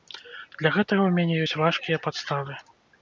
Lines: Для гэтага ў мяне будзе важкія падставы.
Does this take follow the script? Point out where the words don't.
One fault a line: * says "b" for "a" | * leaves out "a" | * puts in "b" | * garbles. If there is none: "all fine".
* says "ёсць" for "будзе"